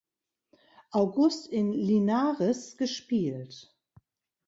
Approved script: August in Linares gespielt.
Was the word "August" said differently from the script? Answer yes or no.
no